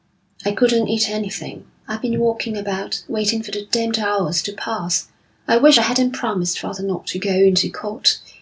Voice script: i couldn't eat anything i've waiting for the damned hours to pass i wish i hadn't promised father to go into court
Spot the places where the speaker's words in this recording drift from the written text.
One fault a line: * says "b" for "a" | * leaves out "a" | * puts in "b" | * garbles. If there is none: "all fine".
* puts in "been walking about"
* puts in "not"